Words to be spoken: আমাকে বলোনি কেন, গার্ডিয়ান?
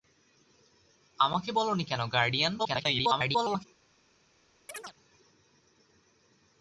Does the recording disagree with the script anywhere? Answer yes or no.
yes